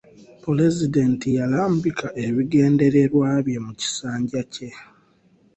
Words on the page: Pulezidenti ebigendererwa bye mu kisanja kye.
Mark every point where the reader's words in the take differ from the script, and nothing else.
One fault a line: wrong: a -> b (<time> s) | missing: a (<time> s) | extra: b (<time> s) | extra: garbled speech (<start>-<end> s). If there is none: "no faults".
extra: yalambika (1.4 s)